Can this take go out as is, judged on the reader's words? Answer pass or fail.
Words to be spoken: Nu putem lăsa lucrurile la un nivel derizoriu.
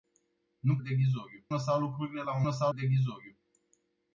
fail